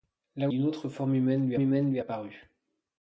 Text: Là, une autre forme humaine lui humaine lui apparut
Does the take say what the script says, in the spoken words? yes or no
yes